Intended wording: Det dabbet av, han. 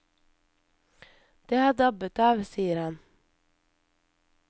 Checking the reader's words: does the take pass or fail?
fail